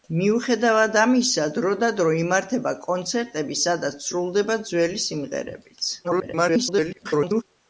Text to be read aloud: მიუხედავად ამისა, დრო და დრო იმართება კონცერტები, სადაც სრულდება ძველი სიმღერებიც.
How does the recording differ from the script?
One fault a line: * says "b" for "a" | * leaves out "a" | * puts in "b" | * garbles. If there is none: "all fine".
* garbles